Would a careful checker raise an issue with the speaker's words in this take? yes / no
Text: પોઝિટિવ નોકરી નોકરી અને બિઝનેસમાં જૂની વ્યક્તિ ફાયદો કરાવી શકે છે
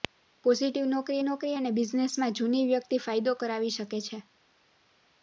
no